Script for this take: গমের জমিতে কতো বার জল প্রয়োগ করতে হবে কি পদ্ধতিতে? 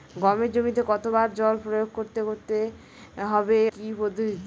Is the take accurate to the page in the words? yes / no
yes